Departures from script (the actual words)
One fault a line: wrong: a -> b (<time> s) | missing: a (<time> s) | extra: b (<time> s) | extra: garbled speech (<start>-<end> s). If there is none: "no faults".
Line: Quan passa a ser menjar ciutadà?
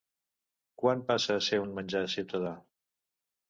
extra: un (1.6 s)